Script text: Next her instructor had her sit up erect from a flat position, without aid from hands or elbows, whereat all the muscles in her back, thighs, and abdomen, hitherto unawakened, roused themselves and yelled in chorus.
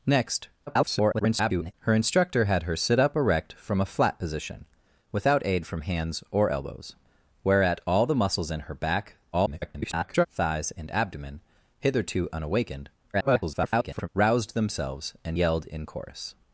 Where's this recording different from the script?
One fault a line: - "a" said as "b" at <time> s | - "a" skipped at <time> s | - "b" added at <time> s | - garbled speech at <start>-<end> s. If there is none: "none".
- garbled speech at 0.7-1.7 s
- garbled speech at 9.3-10.3 s
- garbled speech at 13.1-14.1 s